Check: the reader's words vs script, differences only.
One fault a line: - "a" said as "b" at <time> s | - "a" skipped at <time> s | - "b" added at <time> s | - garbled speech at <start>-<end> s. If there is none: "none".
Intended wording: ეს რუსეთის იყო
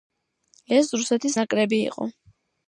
- "ნაკრები" added at 1.4 s